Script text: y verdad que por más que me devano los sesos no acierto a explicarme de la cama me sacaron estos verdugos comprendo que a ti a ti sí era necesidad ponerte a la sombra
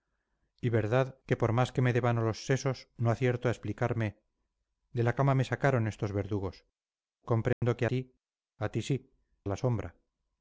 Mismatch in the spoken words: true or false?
true